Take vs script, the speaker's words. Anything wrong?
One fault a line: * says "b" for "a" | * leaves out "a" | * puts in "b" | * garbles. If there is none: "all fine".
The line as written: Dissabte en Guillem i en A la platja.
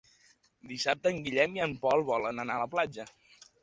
* puts in "Pol volen anar"